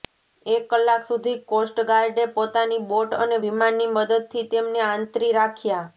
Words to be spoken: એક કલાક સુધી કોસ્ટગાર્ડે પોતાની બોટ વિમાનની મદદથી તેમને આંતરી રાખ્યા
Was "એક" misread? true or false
false